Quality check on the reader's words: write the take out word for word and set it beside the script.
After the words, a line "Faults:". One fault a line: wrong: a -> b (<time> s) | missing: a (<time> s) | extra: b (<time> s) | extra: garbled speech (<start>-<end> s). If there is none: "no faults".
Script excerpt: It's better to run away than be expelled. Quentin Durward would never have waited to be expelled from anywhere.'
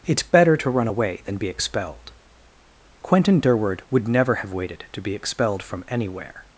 It's better to run away than be expelled. Quentin Durward would never have waited to be expelled from anywhere.'
Faults:
no faults